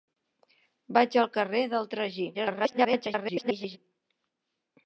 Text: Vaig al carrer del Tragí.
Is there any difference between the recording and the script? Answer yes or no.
yes